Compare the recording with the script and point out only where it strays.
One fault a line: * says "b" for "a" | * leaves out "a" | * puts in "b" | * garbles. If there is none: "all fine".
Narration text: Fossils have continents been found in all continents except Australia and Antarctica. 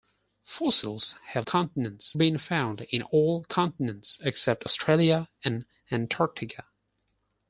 all fine